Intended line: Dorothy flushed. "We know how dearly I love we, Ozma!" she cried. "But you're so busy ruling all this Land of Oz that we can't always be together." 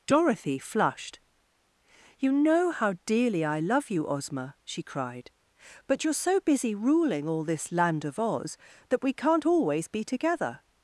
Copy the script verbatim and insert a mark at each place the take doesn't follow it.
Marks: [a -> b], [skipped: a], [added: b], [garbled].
Dorothy flushed. ["We -> You] know how dearly I love [we, -> you] Ozma!" she cried. "But you're so busy ruling all this Land of Oz that we can't always be together."